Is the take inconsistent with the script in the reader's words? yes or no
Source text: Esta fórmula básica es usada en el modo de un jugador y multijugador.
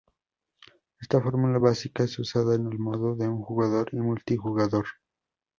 no